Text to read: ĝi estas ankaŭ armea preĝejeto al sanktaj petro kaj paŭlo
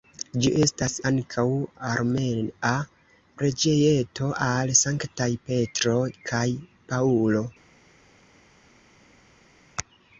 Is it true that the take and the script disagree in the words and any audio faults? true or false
false